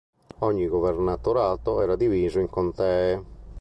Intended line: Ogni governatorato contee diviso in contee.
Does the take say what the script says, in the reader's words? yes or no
no